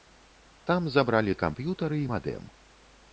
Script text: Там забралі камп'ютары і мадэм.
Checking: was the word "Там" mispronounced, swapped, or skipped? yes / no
no